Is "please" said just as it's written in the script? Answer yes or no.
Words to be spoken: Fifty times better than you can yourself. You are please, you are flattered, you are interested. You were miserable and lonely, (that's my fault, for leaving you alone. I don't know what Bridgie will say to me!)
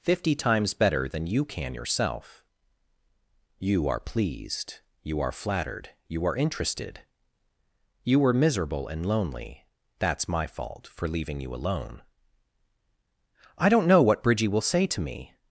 no